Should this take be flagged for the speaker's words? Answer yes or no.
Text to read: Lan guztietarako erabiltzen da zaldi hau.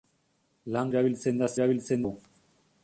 yes